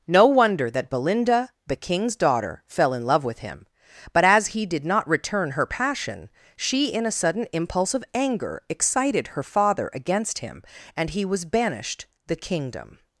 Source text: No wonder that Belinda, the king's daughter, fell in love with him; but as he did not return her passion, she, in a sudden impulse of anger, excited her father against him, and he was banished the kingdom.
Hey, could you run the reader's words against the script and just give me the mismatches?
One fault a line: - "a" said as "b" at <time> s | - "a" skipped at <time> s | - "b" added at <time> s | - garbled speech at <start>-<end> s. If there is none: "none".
none